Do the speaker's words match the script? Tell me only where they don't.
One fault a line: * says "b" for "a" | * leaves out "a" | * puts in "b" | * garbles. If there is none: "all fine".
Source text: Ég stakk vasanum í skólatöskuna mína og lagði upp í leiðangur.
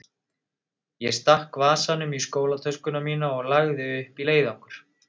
all fine